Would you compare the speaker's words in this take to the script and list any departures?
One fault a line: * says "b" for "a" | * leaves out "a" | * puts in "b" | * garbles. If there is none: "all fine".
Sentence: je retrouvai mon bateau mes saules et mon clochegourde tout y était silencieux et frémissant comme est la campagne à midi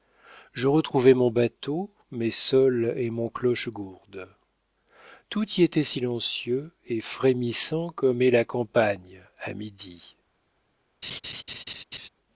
all fine